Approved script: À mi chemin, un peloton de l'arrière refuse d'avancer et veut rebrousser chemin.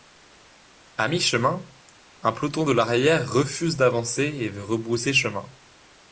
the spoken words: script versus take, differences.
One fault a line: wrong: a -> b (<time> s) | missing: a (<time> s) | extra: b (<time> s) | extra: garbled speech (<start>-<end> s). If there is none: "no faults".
no faults